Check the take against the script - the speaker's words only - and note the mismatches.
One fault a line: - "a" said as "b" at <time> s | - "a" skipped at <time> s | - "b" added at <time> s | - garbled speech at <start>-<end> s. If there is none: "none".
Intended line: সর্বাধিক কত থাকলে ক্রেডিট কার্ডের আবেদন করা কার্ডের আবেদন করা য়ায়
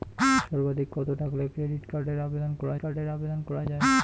none